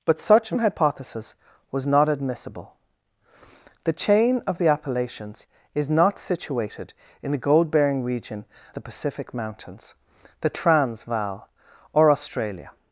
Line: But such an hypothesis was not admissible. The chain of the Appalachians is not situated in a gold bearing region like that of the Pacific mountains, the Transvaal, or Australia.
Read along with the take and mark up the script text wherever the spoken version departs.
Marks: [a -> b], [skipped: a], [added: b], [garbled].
But such an hypothesis was not admissible. The chain of the Appalachians is not situated in a gold bearing region [skipped: like that of] the Pacific mountains, the Transvaal, or Australia.